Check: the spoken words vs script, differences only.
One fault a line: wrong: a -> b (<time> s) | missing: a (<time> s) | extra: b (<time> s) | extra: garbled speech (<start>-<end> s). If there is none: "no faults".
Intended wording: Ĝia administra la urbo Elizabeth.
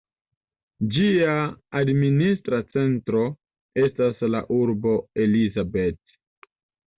extra: centro estas (2.7 s)